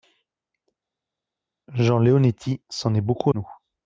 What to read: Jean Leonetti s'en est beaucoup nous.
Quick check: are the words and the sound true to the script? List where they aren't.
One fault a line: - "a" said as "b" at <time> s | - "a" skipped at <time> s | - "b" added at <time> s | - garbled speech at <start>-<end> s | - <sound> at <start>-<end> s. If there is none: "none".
none